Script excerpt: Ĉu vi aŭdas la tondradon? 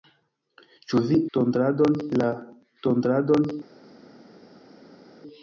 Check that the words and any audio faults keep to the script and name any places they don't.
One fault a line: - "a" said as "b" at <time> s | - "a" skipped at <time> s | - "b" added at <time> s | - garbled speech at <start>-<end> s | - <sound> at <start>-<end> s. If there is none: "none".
- "aŭdas" said as "tondradon" at 1.4 s